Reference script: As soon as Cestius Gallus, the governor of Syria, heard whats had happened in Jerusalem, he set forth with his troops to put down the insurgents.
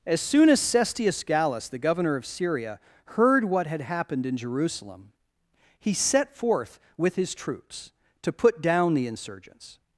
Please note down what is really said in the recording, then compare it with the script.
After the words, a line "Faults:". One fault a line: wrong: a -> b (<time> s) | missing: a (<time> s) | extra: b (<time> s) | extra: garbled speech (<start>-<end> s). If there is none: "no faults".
As soon as Cestius Gallus, the governor of Syria, heard what had happened in Jerusalem, he set forth with his troops to put down the insurgents.
Faults:
wrong: whats -> what (3.5 s)